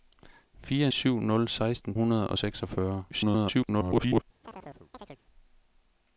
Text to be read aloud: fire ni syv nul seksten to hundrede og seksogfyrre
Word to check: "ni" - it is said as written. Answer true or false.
false